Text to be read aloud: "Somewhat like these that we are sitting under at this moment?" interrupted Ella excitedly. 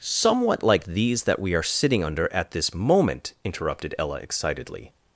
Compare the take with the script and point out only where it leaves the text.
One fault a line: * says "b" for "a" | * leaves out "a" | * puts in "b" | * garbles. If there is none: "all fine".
all fine